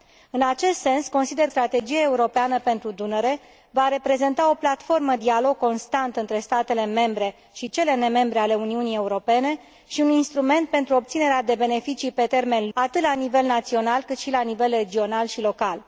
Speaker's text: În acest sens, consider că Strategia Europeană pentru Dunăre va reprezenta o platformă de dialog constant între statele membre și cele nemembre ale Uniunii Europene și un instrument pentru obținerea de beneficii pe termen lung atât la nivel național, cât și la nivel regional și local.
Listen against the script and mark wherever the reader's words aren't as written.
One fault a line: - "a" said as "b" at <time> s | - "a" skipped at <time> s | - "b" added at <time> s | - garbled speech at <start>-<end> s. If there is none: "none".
- "că" skipped at 1.5 s
- "de" skipped at 5.1 s
- "lung" skipped at 12.7 s